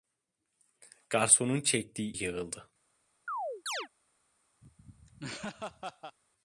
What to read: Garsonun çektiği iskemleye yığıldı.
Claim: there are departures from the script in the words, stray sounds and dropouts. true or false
true